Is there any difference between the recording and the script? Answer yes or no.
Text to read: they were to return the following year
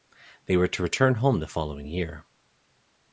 yes